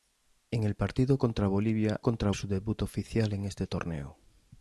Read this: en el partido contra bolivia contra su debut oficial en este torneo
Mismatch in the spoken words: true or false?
false